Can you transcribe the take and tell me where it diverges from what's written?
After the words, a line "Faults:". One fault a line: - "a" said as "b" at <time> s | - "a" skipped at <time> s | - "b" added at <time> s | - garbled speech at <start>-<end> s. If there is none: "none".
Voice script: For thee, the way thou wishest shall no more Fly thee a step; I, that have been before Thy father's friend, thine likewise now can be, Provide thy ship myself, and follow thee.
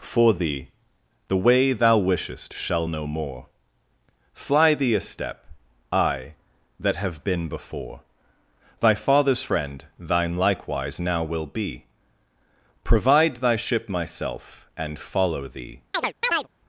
For thee, the way thou wishest shall no more Fly thee a step; I, that have been before Thy father's friend, thine likewise now will be, Provide thy ship myself, and follow thee.
Faults:
- "can" said as "will" at 11.2 s